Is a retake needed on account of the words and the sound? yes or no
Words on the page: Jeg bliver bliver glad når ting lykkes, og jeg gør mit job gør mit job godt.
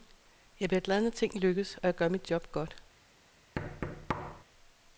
yes